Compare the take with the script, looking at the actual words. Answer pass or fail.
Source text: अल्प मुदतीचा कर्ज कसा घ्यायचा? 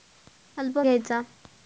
fail